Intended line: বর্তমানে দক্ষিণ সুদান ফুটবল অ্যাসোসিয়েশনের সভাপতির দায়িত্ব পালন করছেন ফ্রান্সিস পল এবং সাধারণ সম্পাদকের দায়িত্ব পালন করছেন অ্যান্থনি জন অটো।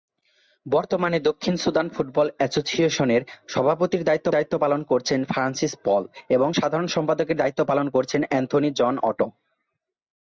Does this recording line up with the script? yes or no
no